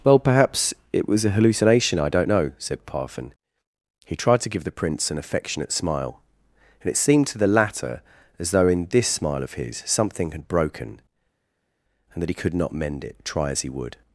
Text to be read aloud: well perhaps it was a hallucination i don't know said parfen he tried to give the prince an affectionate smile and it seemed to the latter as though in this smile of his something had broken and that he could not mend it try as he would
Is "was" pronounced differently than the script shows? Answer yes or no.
no